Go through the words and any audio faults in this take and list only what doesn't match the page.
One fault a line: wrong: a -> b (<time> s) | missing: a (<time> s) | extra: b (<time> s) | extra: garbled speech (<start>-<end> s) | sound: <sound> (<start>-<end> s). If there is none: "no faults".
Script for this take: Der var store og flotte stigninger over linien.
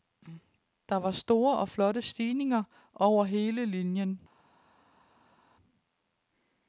extra: hele (3.2 s)